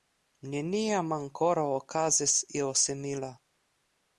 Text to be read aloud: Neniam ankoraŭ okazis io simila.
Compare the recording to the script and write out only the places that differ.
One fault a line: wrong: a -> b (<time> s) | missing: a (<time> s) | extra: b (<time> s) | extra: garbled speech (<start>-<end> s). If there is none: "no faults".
no faults